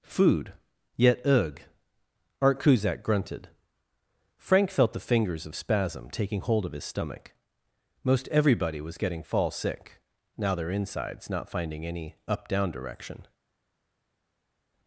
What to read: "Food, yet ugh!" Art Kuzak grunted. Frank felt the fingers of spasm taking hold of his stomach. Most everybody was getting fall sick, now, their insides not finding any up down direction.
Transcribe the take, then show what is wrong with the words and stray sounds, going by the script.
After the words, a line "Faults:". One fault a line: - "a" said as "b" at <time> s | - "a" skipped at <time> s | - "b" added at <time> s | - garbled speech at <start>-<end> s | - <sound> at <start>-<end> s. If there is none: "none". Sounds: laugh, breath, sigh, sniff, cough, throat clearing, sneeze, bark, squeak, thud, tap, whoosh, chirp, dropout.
"Food, yet ugh!" Art Kuzak grunted. Frank felt the fingers of spasm taking hold of his stomach. Most everybody was getting fall sick, now, their insides not finding any up down direction.
Faults:
none